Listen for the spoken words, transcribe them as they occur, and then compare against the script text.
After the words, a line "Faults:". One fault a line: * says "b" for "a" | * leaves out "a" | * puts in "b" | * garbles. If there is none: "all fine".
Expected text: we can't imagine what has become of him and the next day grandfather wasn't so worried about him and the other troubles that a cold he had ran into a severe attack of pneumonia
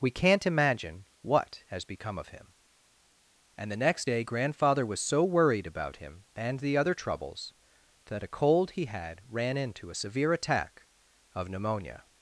we can't imagine what has become of him and the next day grandfather was so worried about him and the other troubles that a cold he had ran into a severe attack of pneumonia
Faults:
* says "was" for "wasn't"